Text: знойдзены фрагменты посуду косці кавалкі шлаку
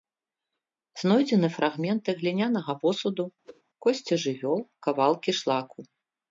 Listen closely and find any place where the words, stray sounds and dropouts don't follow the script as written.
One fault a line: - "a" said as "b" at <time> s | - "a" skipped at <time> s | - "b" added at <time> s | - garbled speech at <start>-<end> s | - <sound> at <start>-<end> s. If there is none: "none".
- "глінянага" added at 2.2 s
- whoosh at 3.4-3.6 s
- "жывёл" added at 4.2 s